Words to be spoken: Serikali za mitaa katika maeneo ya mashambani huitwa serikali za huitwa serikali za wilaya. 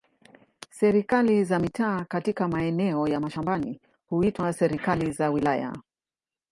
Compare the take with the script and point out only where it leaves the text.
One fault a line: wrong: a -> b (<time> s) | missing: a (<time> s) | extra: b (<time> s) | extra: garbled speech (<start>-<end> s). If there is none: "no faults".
missing: huitwa serikali za (5.3 s)